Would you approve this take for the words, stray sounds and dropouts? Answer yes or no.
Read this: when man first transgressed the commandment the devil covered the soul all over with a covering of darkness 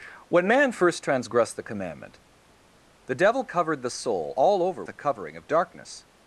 no